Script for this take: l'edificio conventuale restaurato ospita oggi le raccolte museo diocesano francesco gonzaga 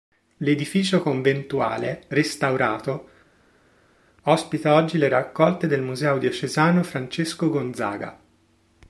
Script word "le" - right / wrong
right